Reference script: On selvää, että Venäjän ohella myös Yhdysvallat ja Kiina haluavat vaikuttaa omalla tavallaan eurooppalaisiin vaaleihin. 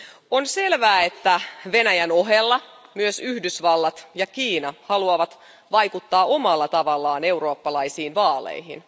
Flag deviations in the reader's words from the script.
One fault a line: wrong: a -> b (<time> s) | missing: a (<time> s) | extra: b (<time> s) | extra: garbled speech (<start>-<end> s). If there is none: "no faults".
no faults